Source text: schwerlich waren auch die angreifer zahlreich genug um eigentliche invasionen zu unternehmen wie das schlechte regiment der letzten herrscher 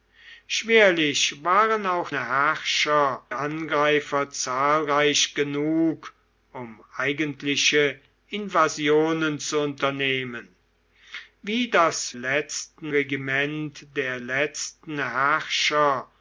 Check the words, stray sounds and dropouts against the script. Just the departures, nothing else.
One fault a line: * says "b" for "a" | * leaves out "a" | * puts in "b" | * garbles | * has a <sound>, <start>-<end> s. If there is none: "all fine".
* says "herrscher" for "die"
* says "letzten" for "schlechte"